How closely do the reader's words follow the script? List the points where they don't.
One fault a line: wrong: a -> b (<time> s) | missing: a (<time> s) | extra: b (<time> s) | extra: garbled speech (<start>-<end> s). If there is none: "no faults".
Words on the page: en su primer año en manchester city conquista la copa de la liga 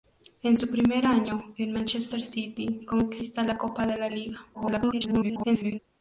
extra: garbled speech (4.5-5.8 s)